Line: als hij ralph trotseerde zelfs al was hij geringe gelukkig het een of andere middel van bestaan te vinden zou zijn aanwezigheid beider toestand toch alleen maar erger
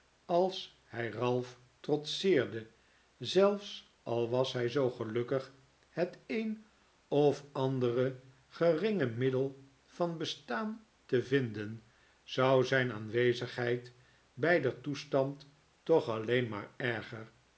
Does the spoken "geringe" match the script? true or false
false